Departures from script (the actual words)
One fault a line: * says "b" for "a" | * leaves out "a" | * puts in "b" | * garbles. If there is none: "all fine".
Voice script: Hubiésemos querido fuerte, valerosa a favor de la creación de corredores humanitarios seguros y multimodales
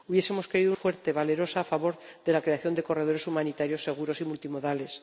all fine